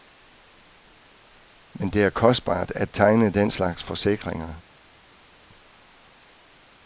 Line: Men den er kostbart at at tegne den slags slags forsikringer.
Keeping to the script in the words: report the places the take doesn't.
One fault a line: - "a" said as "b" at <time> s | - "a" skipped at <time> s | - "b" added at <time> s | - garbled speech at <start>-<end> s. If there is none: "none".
- "den" said as "det" at 1.9 s
- "at" skipped at 2.9 s
- "slags" skipped at 3.8 s